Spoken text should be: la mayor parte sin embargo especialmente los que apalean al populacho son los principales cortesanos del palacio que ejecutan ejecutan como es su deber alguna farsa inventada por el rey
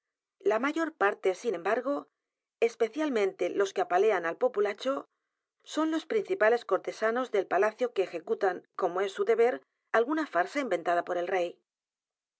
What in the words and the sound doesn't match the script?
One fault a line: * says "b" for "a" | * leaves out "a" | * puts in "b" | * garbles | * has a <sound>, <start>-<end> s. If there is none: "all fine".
* leaves out "ejecutan"